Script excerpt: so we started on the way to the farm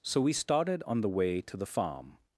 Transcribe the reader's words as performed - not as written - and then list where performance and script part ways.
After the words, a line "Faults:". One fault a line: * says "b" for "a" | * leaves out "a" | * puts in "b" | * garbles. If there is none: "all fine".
so we started on the way to the farm
Faults:
all fine